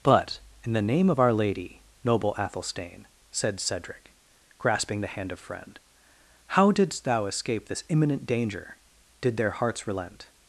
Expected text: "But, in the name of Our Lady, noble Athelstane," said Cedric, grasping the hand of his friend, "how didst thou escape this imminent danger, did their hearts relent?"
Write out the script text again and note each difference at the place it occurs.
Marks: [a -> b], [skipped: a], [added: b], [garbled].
"But, in the name of Our Lady, noble Athelstane," said Cedric, grasping the hand of [skipped: his] friend, "how didst thou escape this imminent danger, did their hearts relent?"